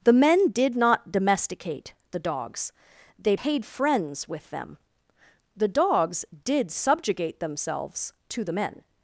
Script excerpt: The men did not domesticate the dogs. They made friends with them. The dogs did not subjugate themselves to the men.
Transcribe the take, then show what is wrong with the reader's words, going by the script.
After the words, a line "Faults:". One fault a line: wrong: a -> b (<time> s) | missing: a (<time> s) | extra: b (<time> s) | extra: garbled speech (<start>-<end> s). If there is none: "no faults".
The men did not domesticate the dogs. They paid friends with them. The dogs did subjugate themselves to the men.
Faults:
wrong: made -> paid (3.3 s)
missing: not (6.7 s)